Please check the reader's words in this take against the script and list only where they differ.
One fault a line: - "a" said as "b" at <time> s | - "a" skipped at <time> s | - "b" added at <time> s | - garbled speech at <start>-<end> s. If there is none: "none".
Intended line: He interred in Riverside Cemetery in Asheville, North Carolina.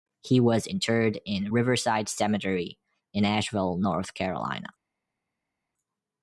- "was" added at 0.4 s